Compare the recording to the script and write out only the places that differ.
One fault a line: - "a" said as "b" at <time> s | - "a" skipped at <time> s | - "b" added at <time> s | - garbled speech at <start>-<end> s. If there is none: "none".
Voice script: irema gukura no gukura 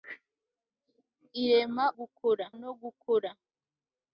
none